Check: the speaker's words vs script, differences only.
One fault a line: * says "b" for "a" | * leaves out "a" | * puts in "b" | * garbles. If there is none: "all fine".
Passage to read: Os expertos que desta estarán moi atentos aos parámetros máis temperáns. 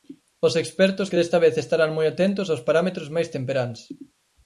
* puts in "vez"